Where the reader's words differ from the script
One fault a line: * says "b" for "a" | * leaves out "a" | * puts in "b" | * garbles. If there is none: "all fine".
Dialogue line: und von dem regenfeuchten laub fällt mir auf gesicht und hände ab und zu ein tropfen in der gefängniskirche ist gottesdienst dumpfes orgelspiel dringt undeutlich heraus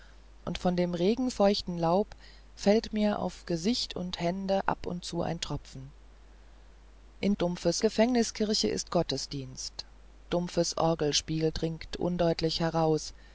* says "dumpfes" for "der"